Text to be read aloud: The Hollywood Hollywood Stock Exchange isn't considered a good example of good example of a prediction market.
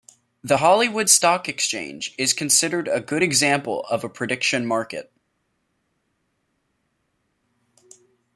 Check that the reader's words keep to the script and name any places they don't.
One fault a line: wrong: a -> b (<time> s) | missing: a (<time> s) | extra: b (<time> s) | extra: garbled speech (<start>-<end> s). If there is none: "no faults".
missing: Hollywood (1.1 s)
wrong: isn't -> is (2.2 s)
missing: good example of (4.0 s)